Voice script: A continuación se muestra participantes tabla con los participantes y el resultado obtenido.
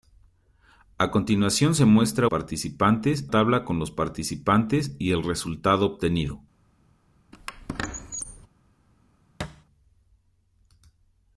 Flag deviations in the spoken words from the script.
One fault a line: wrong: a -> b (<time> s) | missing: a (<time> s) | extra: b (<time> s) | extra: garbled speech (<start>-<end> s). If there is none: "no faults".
no faults